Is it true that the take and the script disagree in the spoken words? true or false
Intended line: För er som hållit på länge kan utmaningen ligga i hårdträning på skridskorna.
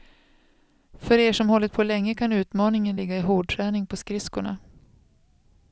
false